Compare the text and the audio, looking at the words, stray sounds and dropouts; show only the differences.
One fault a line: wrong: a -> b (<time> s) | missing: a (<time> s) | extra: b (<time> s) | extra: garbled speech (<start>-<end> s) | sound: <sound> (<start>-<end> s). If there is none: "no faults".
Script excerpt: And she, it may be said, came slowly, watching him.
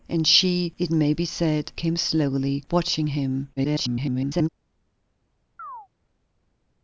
extra: garbled speech (3.6-4.5 s)
sound: chirp (5.6-5.9 s)